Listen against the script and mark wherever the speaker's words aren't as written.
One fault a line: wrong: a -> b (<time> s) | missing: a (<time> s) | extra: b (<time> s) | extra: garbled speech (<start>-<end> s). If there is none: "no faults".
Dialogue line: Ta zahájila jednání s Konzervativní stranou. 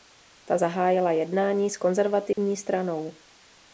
no faults